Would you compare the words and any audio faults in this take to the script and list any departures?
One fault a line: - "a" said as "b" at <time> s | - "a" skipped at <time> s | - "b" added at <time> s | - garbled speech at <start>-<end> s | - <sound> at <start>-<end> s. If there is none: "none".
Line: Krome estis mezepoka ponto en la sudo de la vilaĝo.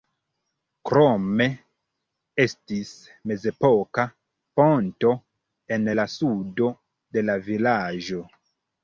none